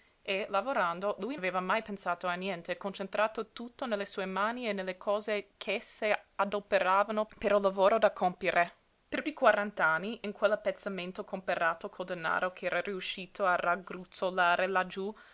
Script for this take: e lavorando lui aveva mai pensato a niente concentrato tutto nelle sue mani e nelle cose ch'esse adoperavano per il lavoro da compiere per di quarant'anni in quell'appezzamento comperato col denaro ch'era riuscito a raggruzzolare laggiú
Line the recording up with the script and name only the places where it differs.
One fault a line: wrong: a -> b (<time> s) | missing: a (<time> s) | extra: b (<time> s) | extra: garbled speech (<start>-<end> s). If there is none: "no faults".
no faults